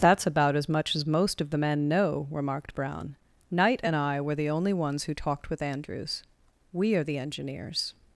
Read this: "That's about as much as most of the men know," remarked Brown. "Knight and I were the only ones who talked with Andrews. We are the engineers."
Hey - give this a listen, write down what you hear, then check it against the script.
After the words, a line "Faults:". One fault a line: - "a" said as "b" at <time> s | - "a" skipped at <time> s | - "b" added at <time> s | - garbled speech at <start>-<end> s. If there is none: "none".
"That's about as much as most of the men know," remarked Brown. "Knight and I were the only ones who talked with Andrews. We are the engineers."
Faults:
none